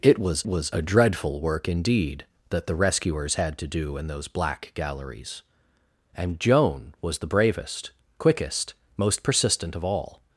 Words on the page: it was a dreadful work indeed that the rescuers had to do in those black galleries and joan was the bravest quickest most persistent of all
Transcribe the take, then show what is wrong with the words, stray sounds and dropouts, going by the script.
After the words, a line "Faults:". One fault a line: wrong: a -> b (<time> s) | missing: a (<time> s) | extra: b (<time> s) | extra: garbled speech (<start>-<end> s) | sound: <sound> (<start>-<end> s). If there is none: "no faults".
it was was a dreadful work indeed that the rescuers had to do in those black galleries and joan was the bravest quickest most persistent of all
Faults:
extra: was (0.4 s)